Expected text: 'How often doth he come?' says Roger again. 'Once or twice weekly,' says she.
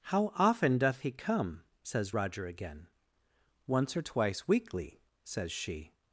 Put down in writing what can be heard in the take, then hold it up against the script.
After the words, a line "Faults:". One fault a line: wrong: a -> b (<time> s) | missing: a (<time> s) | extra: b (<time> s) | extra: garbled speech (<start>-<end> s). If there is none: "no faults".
'How often doth he come?' says Roger again. 'Once or twice weekly,' says she.
Faults:
no faults